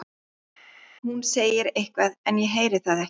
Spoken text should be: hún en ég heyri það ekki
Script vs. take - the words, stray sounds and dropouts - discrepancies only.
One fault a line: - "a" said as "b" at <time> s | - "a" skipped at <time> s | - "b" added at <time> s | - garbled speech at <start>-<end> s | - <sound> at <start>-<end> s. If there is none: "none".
- "segir eitthvað" added at 1.3 s